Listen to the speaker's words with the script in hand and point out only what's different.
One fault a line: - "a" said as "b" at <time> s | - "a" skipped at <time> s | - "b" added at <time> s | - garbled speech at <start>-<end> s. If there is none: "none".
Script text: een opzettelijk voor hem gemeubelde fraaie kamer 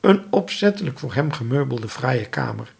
none